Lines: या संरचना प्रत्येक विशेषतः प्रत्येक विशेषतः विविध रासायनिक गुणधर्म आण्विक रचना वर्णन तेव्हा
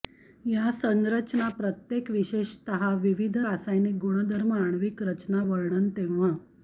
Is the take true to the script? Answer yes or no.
no